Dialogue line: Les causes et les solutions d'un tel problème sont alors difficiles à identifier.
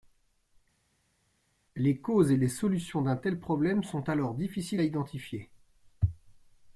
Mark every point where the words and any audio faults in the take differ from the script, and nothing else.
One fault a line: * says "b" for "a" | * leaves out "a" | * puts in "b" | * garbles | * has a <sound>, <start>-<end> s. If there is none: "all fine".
all fine